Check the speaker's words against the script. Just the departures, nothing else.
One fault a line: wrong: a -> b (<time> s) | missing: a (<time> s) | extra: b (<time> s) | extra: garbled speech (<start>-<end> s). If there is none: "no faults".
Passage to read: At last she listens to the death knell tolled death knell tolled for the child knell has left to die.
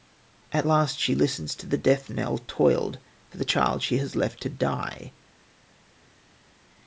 missing: death knell tolled (3.0 s)
wrong: knell -> she (3.8 s)